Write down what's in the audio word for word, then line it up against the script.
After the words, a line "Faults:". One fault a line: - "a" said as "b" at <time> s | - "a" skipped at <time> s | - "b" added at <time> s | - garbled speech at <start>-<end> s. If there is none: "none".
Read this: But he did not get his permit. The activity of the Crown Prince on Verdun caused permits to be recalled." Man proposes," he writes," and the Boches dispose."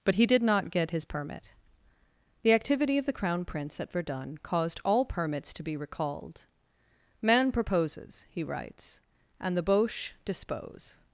But he did not get his permit. The activity of the Crown Prince at Verdun caused all permits to be recalled." Man proposes," he writes," and the Boches dispose."
Faults:
- "on" said as "at" at 3.8 s
- "all" added at 4.9 s